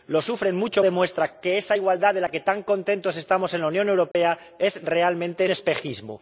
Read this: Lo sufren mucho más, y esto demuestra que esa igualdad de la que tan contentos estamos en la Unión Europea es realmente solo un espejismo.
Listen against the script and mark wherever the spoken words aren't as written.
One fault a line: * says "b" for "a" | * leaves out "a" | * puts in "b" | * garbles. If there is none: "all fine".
* leaves out "más y esto"
* leaves out "solo un"